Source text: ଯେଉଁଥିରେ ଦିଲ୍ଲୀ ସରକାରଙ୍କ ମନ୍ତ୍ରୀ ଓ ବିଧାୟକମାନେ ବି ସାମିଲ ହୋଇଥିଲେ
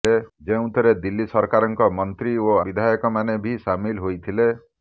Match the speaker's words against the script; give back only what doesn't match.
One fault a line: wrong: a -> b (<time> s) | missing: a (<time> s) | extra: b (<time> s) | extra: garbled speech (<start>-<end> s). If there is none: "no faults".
no faults